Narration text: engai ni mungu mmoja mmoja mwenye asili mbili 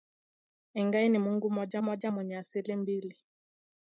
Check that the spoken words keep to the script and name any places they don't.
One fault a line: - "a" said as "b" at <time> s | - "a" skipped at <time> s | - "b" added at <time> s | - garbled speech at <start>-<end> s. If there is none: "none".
none